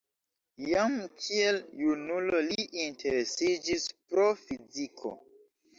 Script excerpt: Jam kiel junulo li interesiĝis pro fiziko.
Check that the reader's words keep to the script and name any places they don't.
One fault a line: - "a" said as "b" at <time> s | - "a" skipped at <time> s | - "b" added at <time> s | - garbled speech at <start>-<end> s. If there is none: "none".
none